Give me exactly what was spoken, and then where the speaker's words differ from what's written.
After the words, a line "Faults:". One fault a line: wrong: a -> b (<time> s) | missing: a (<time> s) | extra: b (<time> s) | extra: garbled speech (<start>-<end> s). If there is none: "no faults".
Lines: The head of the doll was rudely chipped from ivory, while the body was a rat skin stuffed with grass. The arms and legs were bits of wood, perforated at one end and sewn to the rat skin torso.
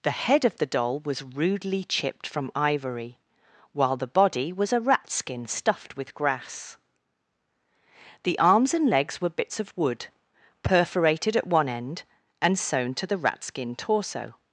The head of the doll was rudely chipped from ivory, while the body was a rat skin stuffed with grass. The arms and legs were bits of wood, perforated at one end and sewn to the rat skin torso.
Faults:
no faults